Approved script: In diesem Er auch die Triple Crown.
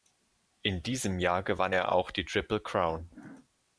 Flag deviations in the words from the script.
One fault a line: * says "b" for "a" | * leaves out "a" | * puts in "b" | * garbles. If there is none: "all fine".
* puts in "Jahr gewann"